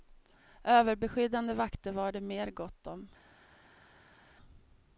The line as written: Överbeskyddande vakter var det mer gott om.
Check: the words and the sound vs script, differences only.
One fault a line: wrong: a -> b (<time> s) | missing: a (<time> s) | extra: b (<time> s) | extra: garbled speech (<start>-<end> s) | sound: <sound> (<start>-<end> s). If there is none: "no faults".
no faults